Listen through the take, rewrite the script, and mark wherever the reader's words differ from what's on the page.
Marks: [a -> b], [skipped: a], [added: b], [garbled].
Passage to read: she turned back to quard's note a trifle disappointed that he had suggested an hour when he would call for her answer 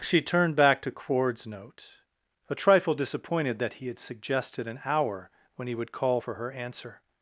she turned back to quard's note a trifle disappointed that he had suggested an hour when he would call for her answer